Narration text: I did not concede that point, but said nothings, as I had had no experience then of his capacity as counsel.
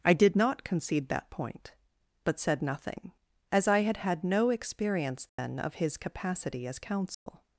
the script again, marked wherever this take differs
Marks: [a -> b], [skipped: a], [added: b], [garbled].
I did not concede that point, but said [nothings, -> nothing] as I had had no experience then of his capacity as counsel.